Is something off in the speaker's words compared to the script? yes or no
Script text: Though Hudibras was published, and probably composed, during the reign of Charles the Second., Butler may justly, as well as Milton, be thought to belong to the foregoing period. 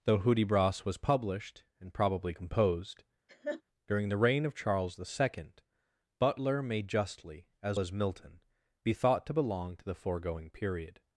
yes